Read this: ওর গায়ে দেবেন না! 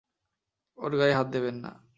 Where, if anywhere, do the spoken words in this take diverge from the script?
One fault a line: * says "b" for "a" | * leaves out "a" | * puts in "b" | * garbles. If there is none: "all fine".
* puts in "হাত"